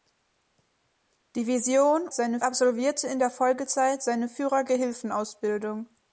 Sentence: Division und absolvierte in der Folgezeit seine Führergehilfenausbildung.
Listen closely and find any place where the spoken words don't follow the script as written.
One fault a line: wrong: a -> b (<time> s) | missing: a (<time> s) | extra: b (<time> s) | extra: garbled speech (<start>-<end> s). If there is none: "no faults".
wrong: und -> seine (2.1 s)